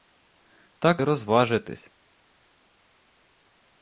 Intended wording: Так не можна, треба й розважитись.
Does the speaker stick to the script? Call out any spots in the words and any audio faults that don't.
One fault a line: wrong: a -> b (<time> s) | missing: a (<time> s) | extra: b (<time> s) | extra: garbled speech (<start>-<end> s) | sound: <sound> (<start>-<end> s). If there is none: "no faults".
missing: не можна треба (1.0 s)